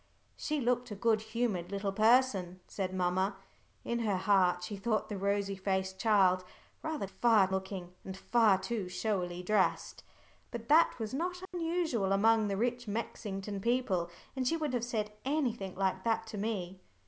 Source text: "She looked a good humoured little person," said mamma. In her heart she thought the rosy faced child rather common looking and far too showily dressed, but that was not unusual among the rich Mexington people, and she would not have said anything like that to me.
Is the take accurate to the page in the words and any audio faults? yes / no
no